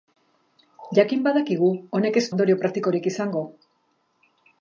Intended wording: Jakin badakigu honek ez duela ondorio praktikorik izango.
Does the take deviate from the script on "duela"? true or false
true